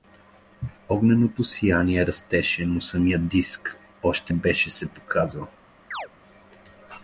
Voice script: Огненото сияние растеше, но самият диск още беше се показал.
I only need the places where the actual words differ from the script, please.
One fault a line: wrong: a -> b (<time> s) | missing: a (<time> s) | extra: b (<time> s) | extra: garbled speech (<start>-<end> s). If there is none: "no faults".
no faults